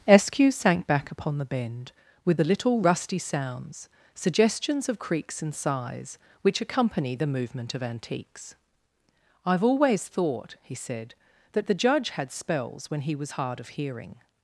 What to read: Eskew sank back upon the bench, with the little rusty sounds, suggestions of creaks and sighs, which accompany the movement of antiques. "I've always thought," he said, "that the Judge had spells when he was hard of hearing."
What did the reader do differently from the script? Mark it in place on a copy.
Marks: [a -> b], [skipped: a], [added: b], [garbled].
Eskew sank back upon the [bench, -> bend] with the little rusty sounds, suggestions of creaks and sighs, which accompany the movement of antiques. "I've always thought," he said, "that the Judge had spells when he was hard of hearing."